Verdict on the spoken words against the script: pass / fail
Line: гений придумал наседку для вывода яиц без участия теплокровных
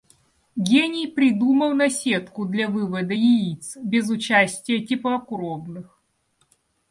pass